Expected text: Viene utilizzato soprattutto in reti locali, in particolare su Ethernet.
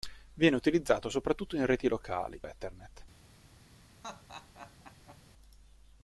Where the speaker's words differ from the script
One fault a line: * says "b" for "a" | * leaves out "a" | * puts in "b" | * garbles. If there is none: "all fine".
* leaves out "in particolare su"